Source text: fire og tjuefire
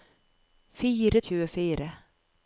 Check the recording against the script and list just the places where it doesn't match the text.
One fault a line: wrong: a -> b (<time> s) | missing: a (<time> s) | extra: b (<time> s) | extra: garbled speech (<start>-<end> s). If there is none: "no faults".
no faults